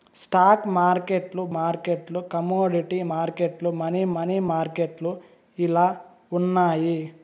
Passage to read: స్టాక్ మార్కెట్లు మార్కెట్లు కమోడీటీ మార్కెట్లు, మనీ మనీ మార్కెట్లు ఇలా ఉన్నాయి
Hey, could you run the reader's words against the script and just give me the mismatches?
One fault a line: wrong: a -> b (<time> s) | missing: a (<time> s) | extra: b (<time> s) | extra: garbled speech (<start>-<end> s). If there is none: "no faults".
no faults